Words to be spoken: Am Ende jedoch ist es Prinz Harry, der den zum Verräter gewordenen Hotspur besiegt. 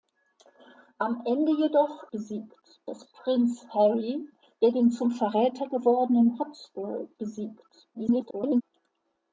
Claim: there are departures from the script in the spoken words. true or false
true